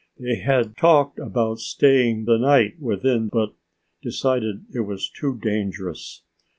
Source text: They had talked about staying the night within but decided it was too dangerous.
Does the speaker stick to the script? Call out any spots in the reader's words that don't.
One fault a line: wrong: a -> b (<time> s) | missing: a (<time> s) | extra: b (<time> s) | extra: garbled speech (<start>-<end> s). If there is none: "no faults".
no faults